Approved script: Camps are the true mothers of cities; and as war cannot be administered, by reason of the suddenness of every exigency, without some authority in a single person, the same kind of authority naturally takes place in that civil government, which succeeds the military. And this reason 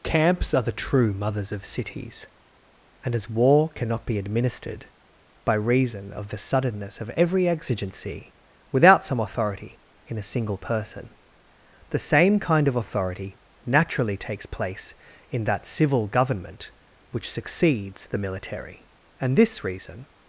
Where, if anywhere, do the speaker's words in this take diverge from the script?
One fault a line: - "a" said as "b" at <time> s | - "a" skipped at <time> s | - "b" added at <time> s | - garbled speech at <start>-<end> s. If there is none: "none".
none